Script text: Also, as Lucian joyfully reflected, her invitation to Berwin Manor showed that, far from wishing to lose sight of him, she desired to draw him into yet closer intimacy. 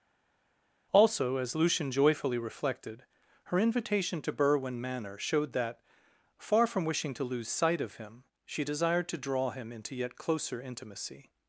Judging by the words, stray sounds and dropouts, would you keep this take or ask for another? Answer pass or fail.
pass